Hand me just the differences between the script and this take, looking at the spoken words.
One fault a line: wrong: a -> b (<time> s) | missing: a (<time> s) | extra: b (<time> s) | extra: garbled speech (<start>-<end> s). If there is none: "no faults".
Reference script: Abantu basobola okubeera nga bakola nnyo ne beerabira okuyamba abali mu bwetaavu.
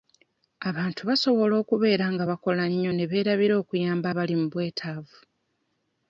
no faults